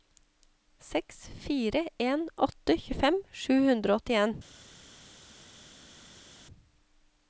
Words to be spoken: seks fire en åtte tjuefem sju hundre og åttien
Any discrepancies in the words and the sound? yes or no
no